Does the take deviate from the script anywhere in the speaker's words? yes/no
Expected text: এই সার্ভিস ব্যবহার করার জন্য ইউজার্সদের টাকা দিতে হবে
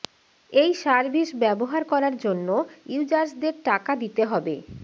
no